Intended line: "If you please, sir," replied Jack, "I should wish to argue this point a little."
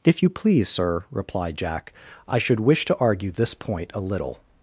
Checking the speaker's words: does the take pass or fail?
pass